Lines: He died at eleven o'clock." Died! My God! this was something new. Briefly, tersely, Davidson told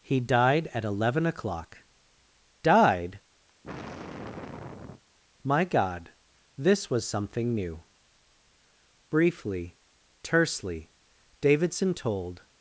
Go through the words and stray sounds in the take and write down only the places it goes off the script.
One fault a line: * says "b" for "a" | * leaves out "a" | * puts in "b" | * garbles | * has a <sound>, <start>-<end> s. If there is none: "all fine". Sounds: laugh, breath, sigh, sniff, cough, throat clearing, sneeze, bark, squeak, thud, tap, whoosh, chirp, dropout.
* has a sigh, 3.5-5.0 s